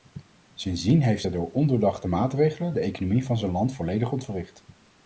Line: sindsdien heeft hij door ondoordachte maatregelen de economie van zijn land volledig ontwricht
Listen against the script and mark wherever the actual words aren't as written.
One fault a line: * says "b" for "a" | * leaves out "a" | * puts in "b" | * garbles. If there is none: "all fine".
all fine